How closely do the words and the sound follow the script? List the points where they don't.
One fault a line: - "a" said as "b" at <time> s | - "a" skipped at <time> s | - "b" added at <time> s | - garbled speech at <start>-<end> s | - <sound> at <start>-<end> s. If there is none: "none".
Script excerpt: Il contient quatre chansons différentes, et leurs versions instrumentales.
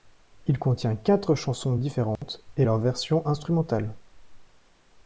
- dropout at 2.2-2.2 s